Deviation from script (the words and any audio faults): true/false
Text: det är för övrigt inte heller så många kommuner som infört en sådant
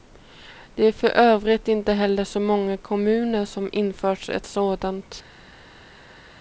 true